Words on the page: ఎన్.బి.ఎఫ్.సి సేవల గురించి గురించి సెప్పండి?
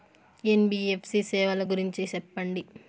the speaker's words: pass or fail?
fail